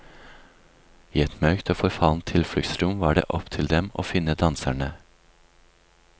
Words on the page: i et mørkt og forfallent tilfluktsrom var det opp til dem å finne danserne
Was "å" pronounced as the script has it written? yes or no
yes